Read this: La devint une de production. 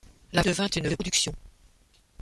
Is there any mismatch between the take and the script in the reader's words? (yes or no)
no